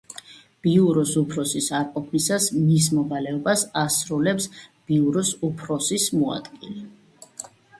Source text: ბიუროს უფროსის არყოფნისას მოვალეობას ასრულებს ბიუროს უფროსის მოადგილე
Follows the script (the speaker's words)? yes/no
no